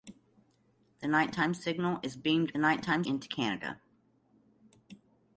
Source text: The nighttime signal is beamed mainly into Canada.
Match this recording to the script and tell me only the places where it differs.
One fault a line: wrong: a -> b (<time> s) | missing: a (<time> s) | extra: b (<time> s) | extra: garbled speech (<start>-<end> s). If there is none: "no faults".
wrong: mainly -> nighttime (2.6 s)